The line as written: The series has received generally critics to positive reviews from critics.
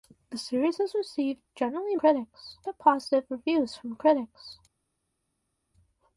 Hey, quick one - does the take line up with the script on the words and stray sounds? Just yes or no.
yes